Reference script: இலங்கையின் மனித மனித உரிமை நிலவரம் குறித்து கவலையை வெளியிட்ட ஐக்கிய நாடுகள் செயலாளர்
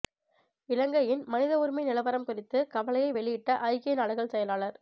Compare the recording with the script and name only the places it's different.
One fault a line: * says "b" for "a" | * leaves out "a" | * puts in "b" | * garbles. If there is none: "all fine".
* leaves out "மனித"